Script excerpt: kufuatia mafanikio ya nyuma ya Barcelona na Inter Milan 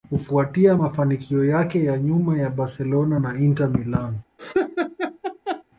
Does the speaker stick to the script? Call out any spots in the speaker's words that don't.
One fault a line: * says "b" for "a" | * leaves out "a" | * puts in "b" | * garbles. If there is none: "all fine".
* puts in "yake"